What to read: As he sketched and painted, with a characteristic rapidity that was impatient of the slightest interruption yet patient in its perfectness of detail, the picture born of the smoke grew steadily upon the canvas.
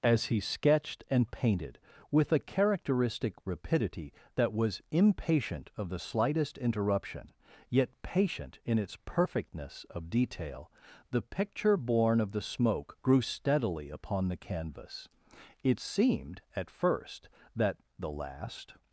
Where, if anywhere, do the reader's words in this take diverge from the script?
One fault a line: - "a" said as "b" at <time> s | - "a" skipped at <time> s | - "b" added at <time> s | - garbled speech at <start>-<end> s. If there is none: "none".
- "It seemed at first that The Last" added at 15.6 s